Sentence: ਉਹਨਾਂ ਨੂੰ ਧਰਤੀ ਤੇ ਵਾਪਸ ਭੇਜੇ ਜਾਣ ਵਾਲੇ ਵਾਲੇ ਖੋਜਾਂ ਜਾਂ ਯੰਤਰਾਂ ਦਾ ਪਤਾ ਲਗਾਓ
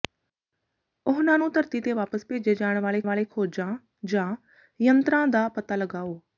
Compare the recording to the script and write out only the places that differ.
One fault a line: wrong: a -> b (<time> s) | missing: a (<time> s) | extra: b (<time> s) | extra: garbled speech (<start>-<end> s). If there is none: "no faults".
no faults